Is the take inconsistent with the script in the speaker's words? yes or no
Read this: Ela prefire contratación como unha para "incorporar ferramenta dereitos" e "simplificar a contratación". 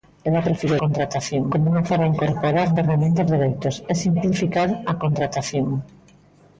no